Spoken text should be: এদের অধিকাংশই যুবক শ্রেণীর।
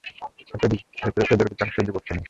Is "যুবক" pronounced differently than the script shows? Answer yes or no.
no